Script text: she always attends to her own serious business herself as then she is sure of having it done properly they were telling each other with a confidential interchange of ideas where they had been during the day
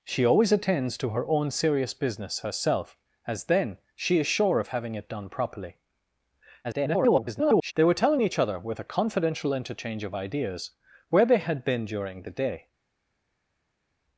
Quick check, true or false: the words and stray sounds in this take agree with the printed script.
false